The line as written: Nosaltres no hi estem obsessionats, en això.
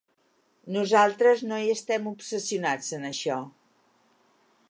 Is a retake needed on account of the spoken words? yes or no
no